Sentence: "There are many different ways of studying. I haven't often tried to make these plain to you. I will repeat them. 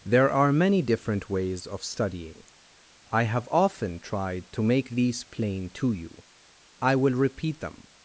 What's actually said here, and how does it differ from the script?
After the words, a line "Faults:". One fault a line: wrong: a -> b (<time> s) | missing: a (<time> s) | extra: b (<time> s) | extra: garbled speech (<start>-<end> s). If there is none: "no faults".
"There are many different ways of studying. I have often tried to make these plain to you. I will repeat them.
Faults:
wrong: haven't -> have (3.2 s)